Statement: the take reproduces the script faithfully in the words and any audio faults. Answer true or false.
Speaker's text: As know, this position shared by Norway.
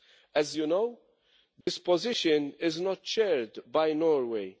false